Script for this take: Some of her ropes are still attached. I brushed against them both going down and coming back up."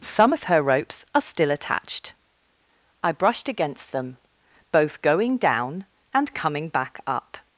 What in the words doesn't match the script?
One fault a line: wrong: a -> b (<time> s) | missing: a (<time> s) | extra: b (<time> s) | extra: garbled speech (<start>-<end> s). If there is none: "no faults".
no faults